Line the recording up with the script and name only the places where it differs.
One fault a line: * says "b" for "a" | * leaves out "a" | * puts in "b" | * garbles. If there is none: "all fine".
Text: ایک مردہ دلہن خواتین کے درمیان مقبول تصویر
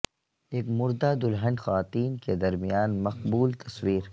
all fine